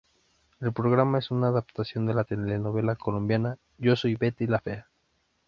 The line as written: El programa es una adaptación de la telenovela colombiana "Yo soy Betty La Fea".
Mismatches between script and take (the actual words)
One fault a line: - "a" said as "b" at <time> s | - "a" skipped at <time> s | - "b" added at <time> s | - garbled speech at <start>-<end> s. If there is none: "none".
none